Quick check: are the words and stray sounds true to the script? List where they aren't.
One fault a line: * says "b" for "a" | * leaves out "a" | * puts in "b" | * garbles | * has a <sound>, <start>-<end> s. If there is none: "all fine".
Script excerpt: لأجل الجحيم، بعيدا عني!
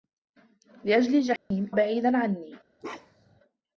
* has a dropout, 1.4-1.5 s
* has a bark, 2.8-3.4 s